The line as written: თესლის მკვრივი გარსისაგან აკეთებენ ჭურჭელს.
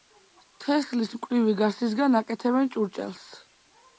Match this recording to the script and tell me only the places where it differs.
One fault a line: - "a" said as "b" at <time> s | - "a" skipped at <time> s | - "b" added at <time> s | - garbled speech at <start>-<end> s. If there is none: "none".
none